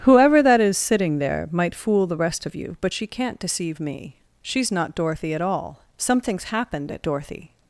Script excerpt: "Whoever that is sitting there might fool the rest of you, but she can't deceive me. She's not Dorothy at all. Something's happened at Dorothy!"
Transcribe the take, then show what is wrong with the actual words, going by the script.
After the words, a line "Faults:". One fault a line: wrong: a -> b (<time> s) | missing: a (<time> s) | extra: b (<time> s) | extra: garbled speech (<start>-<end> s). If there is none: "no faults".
"Whoever that is sitting there might fool the rest of you, but she can't deceive me. She's not Dorothy at all. Something's happened at Dorothy!"
Faults:
no faults